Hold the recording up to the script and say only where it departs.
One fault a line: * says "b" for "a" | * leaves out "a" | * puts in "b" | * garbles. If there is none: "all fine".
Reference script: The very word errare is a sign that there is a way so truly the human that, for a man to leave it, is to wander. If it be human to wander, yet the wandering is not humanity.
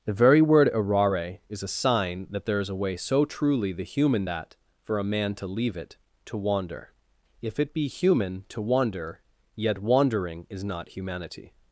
* leaves out "is"
* leaves out "the"